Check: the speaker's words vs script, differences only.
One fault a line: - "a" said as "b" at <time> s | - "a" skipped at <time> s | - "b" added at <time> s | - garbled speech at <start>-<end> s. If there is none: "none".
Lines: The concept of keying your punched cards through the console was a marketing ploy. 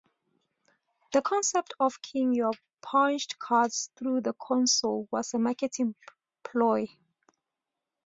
none